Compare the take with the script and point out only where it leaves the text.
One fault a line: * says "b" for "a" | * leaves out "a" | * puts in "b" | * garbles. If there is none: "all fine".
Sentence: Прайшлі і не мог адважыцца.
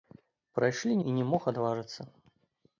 all fine